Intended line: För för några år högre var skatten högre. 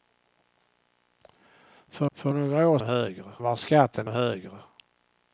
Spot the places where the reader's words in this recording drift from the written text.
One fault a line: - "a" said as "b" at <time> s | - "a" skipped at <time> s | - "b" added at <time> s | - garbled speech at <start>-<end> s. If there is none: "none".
none